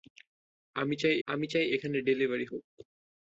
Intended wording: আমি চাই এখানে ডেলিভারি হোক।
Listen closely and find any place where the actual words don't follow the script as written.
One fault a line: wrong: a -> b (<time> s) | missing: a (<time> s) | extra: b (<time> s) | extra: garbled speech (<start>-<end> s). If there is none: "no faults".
extra: আমি চাই (1.3 s)